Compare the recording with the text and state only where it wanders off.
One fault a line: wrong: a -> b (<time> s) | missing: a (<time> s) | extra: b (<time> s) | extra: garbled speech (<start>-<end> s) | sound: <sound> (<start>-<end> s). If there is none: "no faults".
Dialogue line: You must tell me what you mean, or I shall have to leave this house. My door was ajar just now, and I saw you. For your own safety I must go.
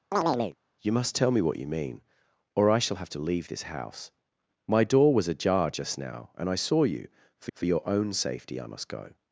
sound: chirp (0.1-0.6 s)
extra: for (7.5 s)